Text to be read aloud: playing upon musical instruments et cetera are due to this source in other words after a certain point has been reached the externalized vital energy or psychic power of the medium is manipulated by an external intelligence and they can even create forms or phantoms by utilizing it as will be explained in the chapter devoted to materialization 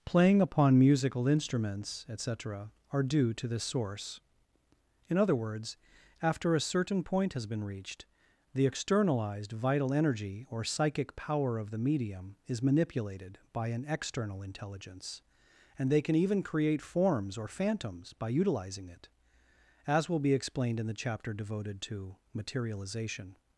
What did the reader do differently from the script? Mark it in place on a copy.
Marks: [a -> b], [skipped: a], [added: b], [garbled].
playing upon musical instruments et cetera are due to this source in other words after a certain point has been reached the externalized vital energy or psychic power of the medium is manipulated by an external intelligence and they can even create forms or phantoms by utilizing it as will be explained in the chapter devoted to materialization